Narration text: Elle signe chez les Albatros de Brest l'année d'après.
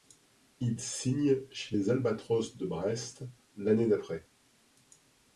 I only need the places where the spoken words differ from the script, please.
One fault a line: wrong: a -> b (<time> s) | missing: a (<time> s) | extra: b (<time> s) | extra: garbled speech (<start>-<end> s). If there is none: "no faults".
wrong: Elle -> Il (0.6 s)